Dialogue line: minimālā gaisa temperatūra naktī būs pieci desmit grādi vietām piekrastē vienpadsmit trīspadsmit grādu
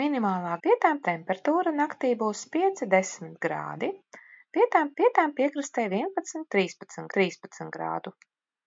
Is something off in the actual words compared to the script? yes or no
yes